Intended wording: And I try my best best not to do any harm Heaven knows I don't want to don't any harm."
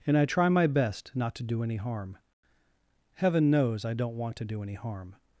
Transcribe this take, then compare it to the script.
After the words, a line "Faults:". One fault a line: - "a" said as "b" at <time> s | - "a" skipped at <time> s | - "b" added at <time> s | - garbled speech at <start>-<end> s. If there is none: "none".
And I try my best not to do any harm Heaven knows I don't want to do any harm."
Faults:
- "best" skipped at 1.1 s
- "don't" said as "do" at 4.5 s